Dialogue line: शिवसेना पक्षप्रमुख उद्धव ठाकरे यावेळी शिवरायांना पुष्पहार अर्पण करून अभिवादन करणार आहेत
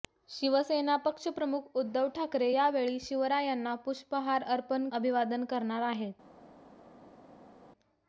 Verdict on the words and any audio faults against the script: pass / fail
fail